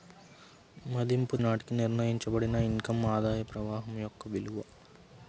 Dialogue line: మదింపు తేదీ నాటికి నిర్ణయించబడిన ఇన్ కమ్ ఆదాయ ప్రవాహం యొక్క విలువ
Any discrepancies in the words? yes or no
yes